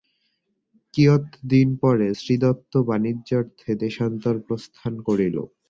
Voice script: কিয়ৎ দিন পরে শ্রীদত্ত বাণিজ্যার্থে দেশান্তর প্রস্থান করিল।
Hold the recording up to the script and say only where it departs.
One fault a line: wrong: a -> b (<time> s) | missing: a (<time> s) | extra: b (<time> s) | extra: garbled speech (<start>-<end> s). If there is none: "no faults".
no faults